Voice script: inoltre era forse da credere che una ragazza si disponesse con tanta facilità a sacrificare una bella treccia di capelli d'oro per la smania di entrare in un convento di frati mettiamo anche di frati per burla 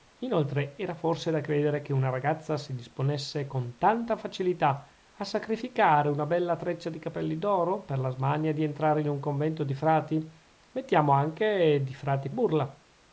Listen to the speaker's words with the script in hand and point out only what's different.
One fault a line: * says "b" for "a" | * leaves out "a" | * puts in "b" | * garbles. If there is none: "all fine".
* leaves out "per"